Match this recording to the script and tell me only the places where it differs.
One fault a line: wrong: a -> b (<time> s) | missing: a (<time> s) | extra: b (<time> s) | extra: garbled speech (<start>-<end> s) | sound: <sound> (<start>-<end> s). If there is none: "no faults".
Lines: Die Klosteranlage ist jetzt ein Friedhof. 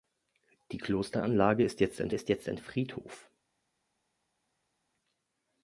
extra: ist jetzt ein (2.1 s)